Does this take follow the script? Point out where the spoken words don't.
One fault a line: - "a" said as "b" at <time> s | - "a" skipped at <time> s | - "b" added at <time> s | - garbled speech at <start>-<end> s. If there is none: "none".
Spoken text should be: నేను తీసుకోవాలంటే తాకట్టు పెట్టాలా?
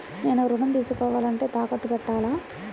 - "ఋణం" added at 0.5 s